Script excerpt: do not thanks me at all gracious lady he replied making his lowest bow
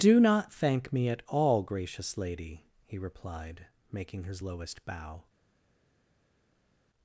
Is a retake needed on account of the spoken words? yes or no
yes